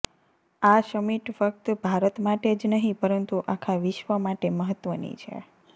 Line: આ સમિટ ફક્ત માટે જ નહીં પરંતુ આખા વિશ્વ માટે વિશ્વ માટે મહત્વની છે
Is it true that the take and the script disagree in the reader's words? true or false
true